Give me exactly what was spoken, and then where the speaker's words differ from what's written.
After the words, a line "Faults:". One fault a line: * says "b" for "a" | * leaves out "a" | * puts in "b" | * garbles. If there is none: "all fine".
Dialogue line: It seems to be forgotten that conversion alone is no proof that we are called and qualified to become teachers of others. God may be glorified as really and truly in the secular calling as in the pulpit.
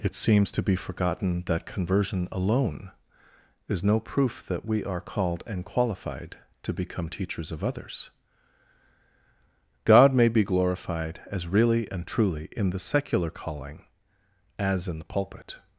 It seems to be forgotten that conversion alone is no proof that we are called and qualified to become teachers of others. God may be glorified as really and truly in the secular calling as in the pulpit.
Faults:
all fine